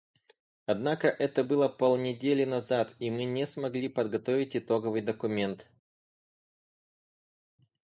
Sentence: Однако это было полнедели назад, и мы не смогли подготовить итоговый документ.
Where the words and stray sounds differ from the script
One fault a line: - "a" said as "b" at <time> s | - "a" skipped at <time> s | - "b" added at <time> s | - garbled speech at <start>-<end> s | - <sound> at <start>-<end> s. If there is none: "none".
none